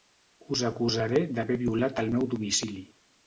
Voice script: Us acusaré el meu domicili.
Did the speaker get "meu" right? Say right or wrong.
right